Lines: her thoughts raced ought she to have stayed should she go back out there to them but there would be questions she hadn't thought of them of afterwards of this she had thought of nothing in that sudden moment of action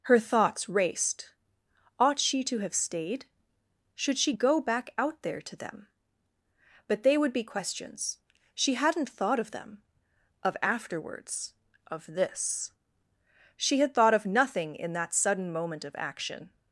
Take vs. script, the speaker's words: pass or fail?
fail